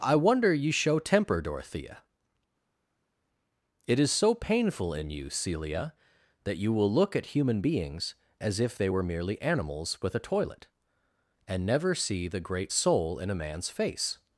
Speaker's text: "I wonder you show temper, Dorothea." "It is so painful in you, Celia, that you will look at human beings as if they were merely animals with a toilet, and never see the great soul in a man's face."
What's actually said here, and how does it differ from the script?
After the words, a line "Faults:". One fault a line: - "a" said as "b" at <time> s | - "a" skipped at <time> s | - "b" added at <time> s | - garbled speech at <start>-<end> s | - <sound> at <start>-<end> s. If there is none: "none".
"I wonder you show temper, Dorothea." "It is so painful in you, Celia, that you will look at human beings as if they were merely animals with a toilet, and never see the great soul in a man's face."
Faults:
none